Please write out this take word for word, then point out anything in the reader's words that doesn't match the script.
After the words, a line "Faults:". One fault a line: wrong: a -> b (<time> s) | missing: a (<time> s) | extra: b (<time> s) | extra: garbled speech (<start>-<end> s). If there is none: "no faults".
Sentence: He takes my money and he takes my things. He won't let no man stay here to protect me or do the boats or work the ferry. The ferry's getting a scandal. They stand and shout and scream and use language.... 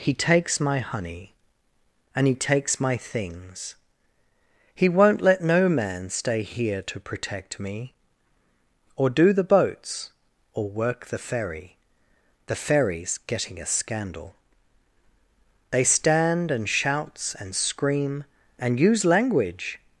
He takes my honey and he takes my things. He won't let no man stay here to protect me or do the boats or work the ferry. The ferry's getting a scandal. They stand and shouts and scream and use language....
Faults:
wrong: money -> honey (0.8 s)
wrong: shout -> shouts (16.7 s)